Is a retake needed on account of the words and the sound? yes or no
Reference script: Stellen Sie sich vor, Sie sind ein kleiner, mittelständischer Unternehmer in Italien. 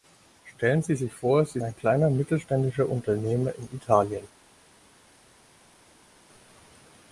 yes